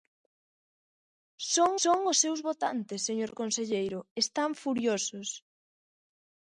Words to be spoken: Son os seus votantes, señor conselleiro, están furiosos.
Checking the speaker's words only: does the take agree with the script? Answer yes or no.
no